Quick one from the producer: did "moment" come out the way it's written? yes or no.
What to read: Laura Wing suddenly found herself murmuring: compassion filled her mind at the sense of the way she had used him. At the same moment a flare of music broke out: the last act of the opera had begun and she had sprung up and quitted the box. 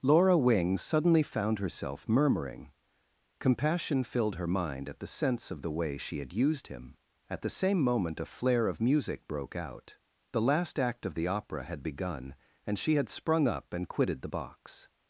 yes